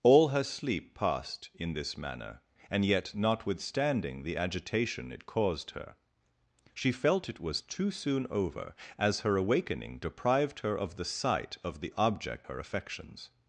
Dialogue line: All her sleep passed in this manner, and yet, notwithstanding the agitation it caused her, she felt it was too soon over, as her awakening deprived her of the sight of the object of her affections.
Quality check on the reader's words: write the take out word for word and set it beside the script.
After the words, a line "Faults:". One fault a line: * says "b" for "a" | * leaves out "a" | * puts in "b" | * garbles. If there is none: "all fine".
All her sleep passed in this manner, and yet, notwithstanding the agitation it caused her, she felt it was too soon over, as her awakening deprived her of the sight of the object her affections.
Faults:
* leaves out "of"